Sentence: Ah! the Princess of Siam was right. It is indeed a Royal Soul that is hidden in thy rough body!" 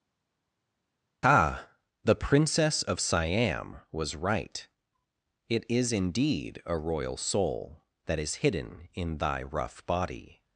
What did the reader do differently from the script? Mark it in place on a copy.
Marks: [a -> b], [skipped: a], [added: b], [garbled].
Ah! the Princess of Siam was right. It is indeed a Royal Soul that is hidden in thy rough body!"